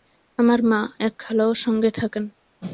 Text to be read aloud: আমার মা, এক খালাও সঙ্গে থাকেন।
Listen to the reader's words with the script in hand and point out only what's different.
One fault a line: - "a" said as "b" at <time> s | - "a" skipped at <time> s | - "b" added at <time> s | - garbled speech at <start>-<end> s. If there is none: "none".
none